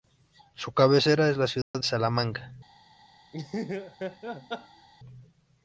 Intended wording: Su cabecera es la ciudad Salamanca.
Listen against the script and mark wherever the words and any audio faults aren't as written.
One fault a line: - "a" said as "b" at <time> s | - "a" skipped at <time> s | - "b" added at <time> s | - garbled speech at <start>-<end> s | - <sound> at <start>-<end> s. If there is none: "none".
- dropout at 1.6-1.7 s
- laugh at 3.3-4.9 s